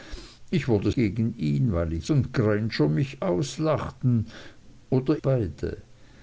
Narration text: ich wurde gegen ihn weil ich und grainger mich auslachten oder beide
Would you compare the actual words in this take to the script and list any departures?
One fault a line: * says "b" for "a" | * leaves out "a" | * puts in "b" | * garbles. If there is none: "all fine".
all fine